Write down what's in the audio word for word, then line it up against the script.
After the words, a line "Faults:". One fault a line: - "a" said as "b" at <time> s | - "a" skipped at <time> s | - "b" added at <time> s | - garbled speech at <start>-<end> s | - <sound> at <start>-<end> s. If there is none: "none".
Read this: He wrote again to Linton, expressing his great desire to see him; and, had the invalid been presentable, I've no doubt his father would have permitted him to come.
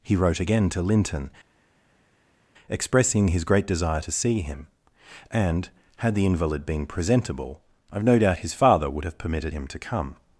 He wrote again to Linton, expressing his great desire to see him; and, had the invalid been presentable, I've no doubt his father would have permitted him to come.
Faults:
none